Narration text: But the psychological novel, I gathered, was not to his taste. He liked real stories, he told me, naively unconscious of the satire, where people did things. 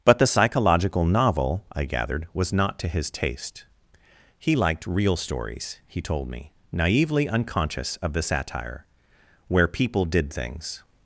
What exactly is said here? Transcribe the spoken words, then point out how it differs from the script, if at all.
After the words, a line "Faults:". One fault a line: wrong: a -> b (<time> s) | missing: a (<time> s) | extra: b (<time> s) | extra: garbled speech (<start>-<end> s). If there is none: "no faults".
But the psychological novel, I gathered, was not to his taste. He liked real stories, he told me, naively unconscious of the satire, where people did things.
Faults:
no faults